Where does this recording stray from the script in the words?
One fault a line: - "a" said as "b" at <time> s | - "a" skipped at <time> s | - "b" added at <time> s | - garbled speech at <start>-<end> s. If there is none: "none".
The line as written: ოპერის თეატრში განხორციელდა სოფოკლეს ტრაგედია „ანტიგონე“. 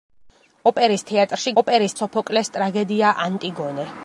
- "განხორციელდა" said as "ოპერის" at 1.6 s